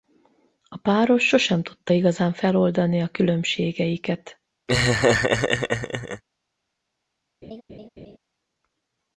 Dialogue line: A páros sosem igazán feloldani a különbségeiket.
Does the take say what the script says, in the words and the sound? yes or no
no